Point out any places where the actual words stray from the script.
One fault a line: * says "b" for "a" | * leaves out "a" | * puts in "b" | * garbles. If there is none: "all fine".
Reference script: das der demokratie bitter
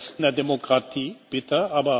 all fine